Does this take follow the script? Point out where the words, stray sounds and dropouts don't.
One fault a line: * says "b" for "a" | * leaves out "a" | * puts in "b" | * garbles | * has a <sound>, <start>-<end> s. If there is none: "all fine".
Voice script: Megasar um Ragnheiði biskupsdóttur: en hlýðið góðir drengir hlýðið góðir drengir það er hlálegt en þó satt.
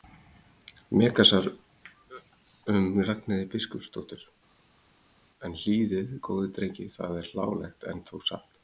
* leaves out "hlýðið góðir drengir"